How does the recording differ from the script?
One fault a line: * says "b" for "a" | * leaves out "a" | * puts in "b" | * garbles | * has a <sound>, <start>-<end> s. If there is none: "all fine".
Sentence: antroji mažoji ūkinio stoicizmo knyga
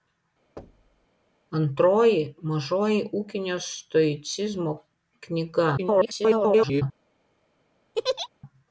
* has a thud, 0.6-1.1 s
* garbles
* has a laugh, 7.9-8.3 s